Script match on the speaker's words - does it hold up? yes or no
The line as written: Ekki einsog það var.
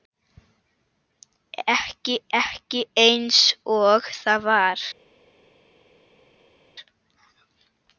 no